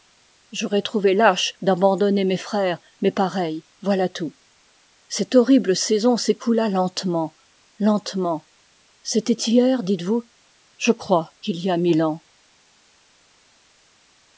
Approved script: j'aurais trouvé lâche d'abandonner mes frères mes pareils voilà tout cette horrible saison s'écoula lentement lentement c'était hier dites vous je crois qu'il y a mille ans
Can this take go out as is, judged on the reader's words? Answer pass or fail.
pass